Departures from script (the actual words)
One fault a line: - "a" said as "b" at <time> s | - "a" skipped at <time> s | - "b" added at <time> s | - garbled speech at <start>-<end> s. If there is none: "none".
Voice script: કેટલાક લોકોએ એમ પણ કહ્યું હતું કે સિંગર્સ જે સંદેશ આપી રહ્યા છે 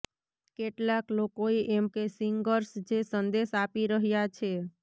- "પણ કહ્યું હતું" skipped at 1.9 s